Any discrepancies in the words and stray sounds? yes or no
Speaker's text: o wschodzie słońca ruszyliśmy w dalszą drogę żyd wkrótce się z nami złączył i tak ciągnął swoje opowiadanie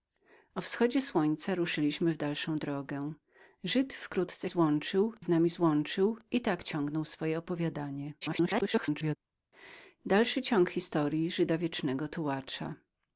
yes